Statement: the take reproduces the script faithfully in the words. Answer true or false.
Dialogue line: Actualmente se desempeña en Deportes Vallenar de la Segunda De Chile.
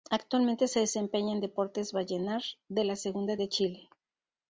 true